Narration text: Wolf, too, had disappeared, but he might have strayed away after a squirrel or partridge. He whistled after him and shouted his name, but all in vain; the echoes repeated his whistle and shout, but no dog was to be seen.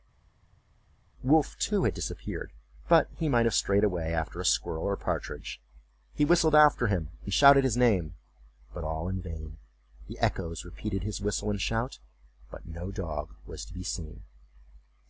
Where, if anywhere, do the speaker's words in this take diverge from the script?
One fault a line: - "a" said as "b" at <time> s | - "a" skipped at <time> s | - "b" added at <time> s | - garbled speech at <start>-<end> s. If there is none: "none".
none